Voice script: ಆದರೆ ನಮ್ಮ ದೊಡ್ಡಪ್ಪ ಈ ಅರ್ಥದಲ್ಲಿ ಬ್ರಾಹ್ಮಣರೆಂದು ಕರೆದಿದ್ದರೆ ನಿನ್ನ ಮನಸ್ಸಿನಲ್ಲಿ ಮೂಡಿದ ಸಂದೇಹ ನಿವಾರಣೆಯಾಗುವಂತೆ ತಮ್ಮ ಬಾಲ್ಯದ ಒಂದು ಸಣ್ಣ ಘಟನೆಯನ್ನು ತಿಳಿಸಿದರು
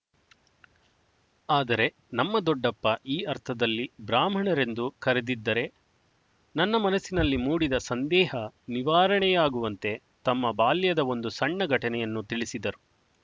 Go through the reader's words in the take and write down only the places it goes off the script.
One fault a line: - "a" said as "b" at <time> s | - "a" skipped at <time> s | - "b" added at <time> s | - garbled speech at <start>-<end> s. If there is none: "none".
- "ನಿನ್ನ" said as "ನನ್ನ" at 6.5 s